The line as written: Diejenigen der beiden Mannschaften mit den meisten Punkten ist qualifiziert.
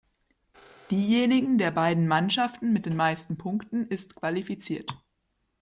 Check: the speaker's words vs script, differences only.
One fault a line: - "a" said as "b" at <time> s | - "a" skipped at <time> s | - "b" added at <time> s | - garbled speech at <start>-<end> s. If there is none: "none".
none